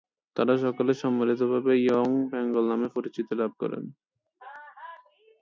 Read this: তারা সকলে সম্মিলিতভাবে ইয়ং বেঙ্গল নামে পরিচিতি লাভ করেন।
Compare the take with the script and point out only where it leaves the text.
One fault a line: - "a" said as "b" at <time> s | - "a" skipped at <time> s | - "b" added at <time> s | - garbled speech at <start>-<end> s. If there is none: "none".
none